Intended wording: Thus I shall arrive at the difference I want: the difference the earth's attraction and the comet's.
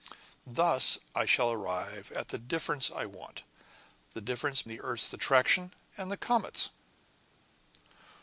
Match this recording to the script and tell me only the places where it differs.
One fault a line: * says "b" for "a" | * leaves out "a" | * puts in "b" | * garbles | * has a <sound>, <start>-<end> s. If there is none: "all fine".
all fine